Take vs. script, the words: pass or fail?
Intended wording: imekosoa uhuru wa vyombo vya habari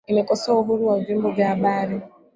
pass